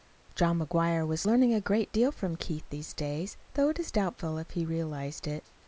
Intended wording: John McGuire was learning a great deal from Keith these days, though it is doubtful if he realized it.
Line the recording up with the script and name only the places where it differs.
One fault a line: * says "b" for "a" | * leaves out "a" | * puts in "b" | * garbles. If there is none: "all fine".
all fine